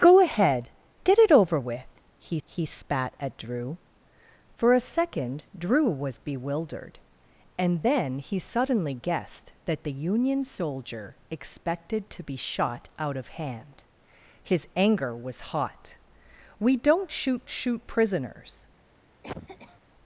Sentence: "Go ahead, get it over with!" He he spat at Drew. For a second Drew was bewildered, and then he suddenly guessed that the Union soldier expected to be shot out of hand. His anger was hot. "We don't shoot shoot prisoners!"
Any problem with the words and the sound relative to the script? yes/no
yes